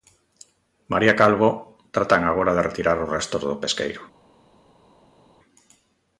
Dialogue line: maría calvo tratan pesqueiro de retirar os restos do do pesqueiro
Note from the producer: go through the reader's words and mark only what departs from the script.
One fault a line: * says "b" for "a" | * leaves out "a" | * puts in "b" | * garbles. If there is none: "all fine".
* says "agora" for "pesqueiro"
* leaves out "do"